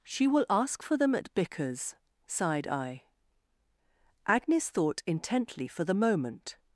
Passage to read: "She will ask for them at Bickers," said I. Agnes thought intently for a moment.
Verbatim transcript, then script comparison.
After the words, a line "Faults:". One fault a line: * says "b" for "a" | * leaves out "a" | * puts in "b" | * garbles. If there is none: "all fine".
"She will ask for them at Bickers," sighed I. Agnes thought intently for the moment.
Faults:
* says "sighed" for "said"
* says "the" for "a"